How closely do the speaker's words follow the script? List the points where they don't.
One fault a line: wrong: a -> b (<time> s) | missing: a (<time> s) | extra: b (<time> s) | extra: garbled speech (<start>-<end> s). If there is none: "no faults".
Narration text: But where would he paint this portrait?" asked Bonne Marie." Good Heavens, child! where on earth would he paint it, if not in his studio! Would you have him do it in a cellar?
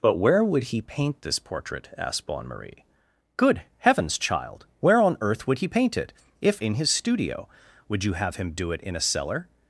missing: not (6.6 s)